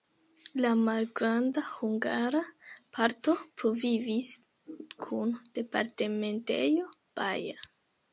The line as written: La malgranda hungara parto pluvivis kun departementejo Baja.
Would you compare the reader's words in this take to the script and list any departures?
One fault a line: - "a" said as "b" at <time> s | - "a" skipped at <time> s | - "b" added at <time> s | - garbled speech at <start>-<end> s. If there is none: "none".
none